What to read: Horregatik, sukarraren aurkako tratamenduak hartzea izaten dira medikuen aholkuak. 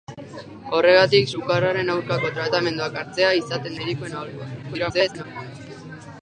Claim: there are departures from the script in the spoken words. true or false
true